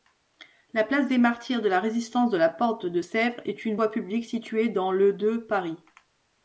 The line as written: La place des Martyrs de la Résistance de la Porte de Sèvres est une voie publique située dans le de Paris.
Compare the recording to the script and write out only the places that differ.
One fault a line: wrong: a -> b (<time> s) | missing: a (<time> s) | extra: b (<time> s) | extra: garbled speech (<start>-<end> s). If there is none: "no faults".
no faults